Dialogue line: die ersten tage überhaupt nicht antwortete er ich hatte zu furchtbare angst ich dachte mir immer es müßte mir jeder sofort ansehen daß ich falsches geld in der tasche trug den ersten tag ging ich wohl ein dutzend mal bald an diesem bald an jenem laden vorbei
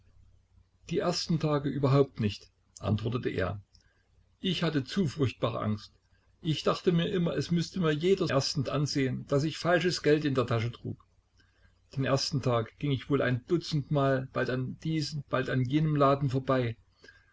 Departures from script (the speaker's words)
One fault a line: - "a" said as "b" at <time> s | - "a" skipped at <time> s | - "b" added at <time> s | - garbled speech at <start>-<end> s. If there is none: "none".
- "sofort" said as "ersten" at 8.3 s